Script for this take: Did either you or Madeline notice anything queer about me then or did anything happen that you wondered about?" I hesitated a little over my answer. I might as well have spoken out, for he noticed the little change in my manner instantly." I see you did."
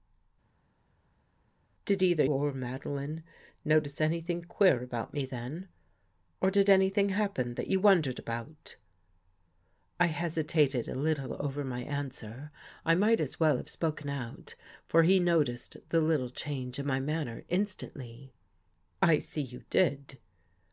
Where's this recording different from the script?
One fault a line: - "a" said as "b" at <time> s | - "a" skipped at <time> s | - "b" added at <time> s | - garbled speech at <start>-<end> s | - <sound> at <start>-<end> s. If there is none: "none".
- "you" skipped at 2.2 s